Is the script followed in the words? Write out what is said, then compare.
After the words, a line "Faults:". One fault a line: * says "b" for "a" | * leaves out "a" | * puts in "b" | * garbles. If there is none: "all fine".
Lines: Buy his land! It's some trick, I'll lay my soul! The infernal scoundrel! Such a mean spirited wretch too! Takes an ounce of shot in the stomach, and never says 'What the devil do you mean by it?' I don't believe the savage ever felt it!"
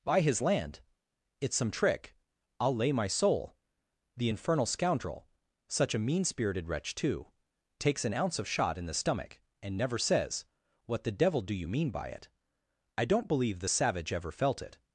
Buy his land! It's some trick, I'll lay my soul! The infernal scoundrel! Such a mean spirited wretch too! Takes an ounce of shot in the stomach, and never says 'What the devil do you mean by it?' I don't believe the savage ever felt it!"
Faults:
all fine